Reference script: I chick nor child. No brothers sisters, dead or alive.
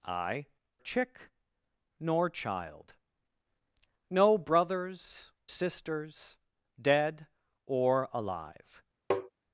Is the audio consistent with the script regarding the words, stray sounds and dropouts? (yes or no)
no